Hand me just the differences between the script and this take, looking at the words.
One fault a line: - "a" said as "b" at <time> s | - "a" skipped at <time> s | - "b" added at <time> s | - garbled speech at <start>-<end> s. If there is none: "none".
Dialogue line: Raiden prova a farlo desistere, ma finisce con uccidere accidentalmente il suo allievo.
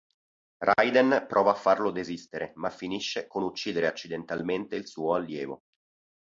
none